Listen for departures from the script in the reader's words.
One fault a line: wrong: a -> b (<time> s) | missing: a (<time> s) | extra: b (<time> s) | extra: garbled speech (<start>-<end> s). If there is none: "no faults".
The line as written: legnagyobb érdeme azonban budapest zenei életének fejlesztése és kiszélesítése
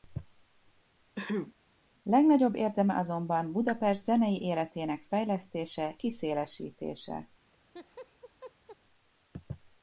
missing: és (6.0 s)